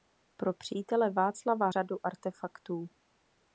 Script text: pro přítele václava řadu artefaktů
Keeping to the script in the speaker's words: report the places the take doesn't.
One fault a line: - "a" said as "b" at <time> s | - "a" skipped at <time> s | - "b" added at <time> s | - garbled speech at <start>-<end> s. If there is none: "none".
none